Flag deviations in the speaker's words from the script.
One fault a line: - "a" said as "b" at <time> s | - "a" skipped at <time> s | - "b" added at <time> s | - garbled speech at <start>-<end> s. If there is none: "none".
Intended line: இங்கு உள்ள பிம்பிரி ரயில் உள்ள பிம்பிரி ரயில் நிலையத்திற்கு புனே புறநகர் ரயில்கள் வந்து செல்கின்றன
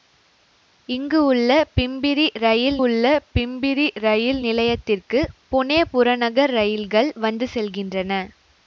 none